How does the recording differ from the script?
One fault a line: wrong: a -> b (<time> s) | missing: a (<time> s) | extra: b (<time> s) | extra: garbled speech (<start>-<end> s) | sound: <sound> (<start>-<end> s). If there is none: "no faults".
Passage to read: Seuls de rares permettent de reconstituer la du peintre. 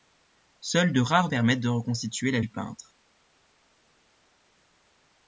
no faults